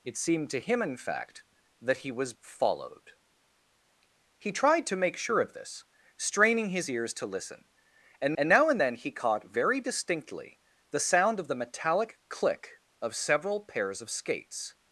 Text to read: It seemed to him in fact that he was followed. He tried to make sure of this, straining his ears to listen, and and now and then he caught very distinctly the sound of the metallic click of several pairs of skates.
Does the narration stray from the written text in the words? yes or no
no